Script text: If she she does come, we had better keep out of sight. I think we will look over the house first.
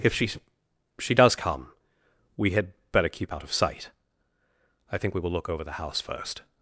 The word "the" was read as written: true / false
true